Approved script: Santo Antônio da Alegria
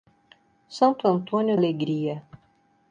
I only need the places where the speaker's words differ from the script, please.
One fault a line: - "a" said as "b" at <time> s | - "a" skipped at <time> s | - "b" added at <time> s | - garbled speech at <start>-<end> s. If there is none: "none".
- "da" skipped at 1.6 s